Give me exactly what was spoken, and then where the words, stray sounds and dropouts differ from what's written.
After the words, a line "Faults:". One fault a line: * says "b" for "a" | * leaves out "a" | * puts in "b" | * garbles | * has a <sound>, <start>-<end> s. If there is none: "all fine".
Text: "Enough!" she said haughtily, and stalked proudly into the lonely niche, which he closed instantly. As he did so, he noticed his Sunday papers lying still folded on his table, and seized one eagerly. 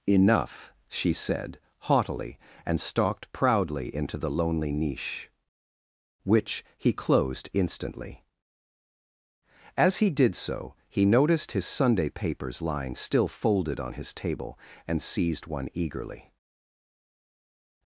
"Enough!" she said haughtily, and stalked proudly into the lonely niche, which he closed instantly. As he did so, he noticed his Sunday papers lying still folded on his table, and seized one eagerly.
Faults:
all fine